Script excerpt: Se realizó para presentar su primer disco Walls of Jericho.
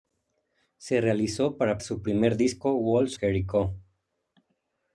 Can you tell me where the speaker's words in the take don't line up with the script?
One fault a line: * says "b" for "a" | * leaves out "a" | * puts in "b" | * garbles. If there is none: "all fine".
* leaves out "presentar"
* leaves out "of"